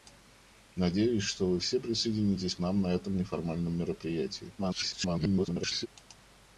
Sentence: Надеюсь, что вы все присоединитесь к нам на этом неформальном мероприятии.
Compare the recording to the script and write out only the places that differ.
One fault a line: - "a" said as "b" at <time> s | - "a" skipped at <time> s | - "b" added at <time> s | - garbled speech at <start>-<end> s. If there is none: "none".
- "к" skipped at 2.5 s
- garbled speech at 4.6-5.9 s